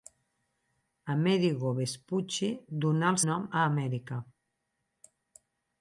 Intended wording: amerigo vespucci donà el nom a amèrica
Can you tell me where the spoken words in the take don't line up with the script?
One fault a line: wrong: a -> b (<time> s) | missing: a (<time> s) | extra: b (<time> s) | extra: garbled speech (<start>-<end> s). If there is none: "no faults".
no faults